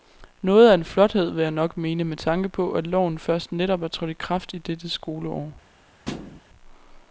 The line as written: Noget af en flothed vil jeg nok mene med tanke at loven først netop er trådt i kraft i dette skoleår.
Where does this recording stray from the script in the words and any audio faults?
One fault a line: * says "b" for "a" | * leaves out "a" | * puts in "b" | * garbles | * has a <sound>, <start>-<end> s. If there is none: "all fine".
* puts in "på"
* has a thud, 6.1-6.4 s